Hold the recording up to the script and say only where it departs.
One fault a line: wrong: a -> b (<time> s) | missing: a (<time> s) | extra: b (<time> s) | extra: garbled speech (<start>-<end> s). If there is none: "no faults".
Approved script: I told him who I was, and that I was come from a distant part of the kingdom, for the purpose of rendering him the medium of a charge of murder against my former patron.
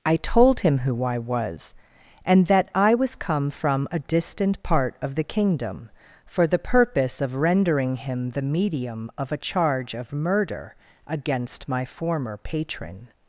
no faults